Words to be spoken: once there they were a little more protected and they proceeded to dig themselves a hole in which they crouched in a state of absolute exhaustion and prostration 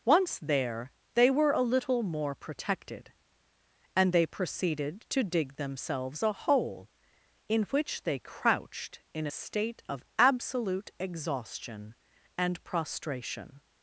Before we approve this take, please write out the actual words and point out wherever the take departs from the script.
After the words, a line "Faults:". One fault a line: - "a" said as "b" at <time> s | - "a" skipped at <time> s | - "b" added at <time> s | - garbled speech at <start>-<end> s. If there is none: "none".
once there they were a little more protected and they proceeded to dig themselves a hole in which they crouched in a state of absolute exhaustion and prostration
Faults:
none